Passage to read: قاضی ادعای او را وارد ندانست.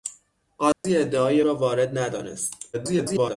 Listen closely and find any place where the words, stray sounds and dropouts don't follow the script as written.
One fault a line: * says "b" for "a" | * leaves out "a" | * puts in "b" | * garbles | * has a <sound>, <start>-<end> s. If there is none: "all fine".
* has a dropout, 0.7-0.8 s
* leaves out "او"
* garbles